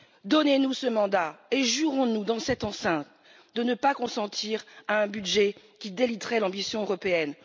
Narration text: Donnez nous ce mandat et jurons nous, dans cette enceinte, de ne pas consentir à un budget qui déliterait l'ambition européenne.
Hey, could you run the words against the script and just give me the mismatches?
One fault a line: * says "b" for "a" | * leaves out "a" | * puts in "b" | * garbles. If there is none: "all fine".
all fine